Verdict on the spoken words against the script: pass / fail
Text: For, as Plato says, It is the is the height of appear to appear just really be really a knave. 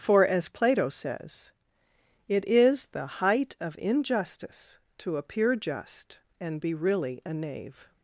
fail